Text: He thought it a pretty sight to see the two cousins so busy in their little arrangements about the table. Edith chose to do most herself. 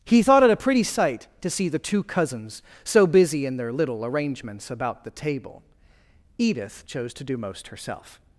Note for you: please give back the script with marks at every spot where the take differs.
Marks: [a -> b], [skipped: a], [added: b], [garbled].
He thought it a pretty sight to see the two cousins so busy in their little arrangements about the table. Edith chose to do most herself.